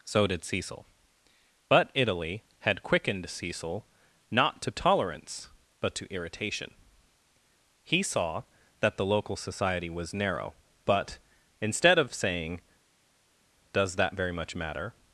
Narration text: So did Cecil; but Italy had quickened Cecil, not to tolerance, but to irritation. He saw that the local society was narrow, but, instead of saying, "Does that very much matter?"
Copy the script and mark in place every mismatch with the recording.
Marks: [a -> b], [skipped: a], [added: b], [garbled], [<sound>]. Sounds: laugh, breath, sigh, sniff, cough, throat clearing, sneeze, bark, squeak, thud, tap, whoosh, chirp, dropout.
So did Cecil; but Italy had quickened Cecil, not to tolerance, but to irritation. He saw that the local society was narrow, but, instead of saying, "Does that very much matter?"